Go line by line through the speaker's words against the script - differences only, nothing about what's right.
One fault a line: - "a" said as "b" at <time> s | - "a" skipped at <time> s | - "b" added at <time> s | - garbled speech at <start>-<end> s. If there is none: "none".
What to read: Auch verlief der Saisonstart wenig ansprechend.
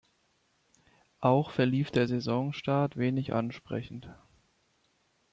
none